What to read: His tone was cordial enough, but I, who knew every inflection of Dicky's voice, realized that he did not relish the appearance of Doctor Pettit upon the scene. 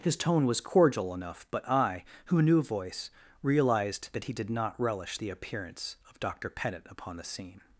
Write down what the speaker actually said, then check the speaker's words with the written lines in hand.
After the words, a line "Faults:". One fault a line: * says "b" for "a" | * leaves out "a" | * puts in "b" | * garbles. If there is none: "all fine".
His tone was cordial enough, but I, who knew voice, realized that he did not relish the appearance of Doctor Pettit upon the scene.
Faults:
* leaves out "every inflection of Dicky's"